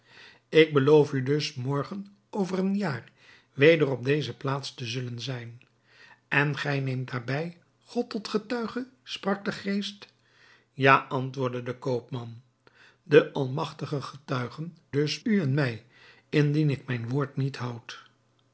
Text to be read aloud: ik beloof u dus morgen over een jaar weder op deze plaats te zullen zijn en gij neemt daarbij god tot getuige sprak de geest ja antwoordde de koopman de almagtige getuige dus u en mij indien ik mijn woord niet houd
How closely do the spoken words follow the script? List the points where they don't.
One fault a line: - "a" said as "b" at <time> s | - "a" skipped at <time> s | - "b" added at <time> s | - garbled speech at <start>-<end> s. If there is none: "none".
none